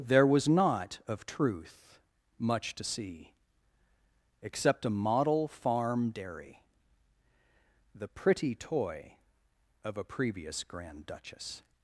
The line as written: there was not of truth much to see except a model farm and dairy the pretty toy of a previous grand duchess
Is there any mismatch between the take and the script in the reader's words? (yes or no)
yes